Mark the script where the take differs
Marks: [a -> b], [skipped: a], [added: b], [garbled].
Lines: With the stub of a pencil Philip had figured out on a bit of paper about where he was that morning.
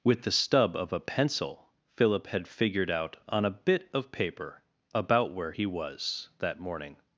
With the stub of a pencil Philip had figured out on a bit of paper about where he was that morning.